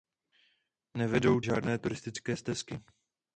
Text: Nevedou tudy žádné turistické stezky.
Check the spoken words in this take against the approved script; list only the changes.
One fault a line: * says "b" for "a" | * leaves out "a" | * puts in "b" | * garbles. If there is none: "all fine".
* leaves out "tudy"